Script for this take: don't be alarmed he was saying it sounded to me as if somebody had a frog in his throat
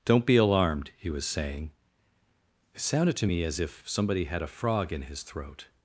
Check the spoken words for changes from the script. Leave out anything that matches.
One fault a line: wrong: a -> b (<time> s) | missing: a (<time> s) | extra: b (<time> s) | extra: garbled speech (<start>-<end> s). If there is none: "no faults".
no faults